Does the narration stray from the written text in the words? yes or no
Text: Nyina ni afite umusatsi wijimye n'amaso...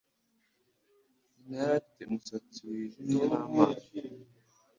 yes